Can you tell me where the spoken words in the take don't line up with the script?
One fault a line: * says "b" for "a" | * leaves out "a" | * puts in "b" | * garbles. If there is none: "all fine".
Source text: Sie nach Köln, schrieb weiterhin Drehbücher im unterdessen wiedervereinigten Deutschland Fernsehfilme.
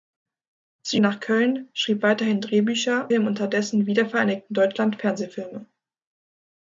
all fine